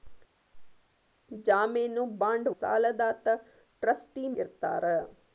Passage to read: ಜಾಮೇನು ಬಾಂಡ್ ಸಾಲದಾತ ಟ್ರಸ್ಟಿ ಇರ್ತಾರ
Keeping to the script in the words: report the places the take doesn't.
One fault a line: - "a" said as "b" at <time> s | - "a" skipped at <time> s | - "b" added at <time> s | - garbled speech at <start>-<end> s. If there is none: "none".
none